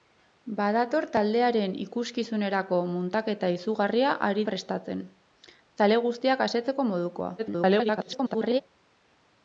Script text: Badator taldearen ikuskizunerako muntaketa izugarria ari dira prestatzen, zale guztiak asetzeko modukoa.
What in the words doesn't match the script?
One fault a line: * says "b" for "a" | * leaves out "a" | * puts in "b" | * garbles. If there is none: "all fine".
* leaves out "dira"
* garbles